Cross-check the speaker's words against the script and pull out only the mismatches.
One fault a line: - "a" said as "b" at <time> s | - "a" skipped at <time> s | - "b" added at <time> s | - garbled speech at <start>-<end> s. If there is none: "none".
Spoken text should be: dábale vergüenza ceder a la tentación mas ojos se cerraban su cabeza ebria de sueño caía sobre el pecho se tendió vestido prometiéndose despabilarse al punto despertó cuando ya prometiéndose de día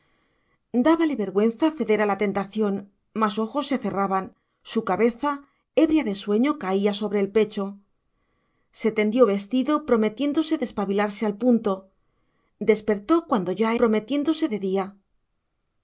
none